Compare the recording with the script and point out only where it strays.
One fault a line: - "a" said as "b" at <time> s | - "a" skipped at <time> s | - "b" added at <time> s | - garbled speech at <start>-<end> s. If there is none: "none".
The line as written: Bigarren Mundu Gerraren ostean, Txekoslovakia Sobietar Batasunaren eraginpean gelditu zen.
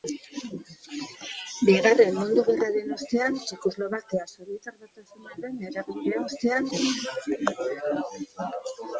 - "gelditu" said as "ostean" at 6.3 s